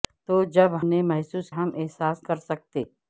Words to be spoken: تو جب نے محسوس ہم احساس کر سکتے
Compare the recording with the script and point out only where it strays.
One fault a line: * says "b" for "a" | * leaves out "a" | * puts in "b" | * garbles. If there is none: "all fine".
all fine